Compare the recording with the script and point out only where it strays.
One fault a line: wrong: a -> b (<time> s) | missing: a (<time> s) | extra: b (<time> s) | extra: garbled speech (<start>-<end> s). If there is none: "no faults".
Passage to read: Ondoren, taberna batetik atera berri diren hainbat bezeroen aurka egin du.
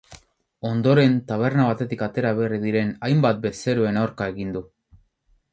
no faults